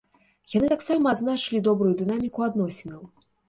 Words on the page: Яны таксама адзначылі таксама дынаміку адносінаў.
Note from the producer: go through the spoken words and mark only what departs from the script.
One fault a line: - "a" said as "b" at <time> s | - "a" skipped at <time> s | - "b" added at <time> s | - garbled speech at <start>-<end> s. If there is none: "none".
- "таксама" said as "добрую" at 1.7 s